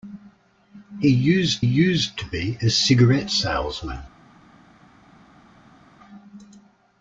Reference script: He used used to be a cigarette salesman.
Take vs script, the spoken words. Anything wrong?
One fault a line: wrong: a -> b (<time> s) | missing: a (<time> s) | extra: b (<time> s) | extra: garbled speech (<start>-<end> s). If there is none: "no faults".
no faults